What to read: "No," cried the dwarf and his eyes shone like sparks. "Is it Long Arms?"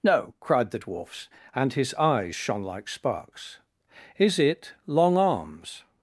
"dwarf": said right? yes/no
no